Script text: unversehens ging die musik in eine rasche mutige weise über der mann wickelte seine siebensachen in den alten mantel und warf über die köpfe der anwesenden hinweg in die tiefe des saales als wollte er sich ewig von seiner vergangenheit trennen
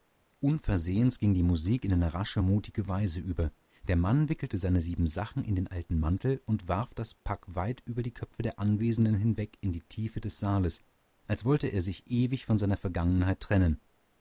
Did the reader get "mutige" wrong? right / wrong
right